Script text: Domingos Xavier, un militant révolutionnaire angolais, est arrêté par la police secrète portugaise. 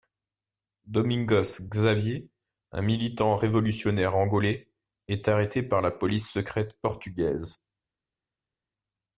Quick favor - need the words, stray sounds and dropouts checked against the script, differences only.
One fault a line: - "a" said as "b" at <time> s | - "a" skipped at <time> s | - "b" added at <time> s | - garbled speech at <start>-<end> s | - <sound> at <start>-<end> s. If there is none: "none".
none